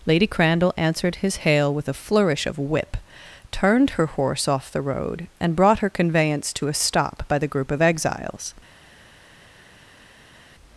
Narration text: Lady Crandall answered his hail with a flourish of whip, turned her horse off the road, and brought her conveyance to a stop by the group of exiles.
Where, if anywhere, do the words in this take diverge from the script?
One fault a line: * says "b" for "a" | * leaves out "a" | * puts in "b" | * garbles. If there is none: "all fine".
all fine